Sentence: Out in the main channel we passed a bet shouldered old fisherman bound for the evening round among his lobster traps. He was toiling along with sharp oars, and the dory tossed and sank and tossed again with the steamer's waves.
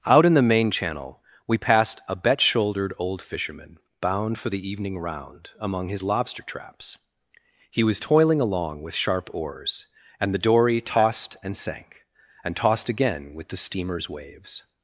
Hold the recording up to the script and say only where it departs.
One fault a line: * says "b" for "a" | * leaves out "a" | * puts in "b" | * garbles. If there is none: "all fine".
all fine